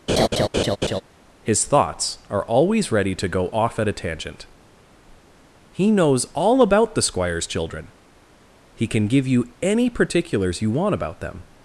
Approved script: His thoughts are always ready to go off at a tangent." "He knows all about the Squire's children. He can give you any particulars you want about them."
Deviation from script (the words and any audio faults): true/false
true